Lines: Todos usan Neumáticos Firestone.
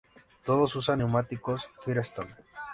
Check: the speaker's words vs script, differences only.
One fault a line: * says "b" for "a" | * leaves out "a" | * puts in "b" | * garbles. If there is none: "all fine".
all fine